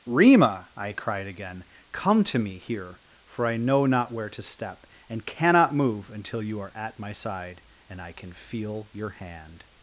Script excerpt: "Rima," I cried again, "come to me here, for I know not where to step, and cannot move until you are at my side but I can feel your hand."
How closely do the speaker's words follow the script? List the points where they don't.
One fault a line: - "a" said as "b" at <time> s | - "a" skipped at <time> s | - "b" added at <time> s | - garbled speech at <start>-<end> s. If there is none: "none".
- "but" said as "and" at 7.9 s